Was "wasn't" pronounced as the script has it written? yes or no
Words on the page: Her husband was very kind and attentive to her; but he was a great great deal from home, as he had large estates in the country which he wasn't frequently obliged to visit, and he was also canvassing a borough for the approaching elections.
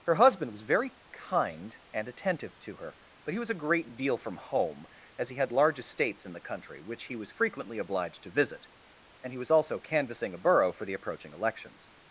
no